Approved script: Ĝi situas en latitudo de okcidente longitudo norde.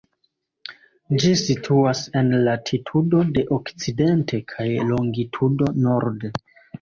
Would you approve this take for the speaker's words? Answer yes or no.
no